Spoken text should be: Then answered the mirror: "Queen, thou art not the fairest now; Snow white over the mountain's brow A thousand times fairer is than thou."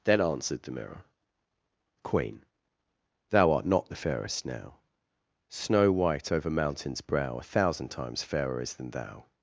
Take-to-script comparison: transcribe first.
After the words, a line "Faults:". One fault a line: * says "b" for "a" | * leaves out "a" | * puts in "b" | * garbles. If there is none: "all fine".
Then answered the mirror: "Queen, thou art not the fairest now; Snow white over mountain's brow A thousand times fairer is than thou."
Faults:
* leaves out "the"